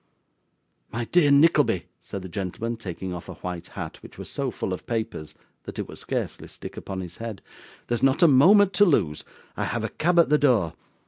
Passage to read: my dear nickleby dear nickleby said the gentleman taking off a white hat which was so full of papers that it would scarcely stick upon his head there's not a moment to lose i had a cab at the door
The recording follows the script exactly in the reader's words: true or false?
false